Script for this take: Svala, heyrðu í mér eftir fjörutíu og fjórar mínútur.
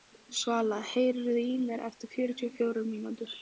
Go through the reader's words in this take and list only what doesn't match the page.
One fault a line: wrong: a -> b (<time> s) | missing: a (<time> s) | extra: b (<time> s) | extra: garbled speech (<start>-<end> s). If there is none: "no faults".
no faults